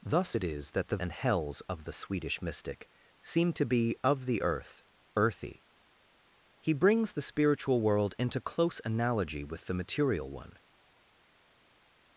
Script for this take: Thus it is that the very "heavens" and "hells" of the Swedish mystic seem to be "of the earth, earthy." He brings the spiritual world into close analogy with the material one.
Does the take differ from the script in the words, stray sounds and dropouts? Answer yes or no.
yes